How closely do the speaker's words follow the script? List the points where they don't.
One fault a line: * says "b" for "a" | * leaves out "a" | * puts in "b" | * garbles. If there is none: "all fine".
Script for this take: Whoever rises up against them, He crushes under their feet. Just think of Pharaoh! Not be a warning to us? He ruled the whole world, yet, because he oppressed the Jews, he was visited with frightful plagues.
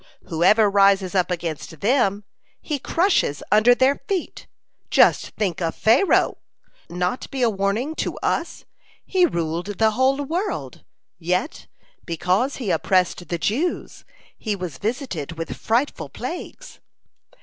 all fine